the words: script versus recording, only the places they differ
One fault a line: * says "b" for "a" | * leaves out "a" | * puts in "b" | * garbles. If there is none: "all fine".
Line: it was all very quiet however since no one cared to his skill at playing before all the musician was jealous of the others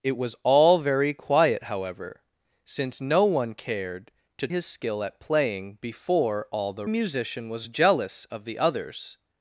all fine